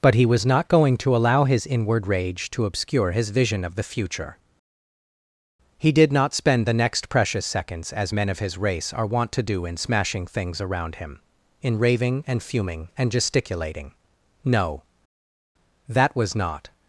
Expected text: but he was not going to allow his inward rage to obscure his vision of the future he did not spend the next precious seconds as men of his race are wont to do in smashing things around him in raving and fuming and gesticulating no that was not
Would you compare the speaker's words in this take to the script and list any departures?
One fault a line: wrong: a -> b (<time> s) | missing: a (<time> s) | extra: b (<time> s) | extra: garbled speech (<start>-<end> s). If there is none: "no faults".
no faults